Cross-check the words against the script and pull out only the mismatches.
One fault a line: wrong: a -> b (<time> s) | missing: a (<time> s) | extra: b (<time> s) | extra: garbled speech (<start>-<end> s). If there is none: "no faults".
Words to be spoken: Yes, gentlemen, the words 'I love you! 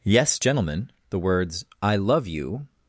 no faults